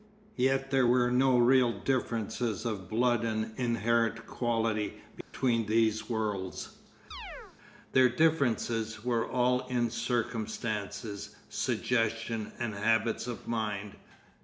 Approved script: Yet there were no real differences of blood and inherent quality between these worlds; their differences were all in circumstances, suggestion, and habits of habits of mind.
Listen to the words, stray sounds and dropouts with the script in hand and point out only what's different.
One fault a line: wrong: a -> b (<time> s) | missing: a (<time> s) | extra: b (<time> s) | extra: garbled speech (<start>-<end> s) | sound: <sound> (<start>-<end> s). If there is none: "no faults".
sound: dropout (5.2-5.3 s)
sound: chirp (7.1-7.6 s)
missing: habits of (13.5 s)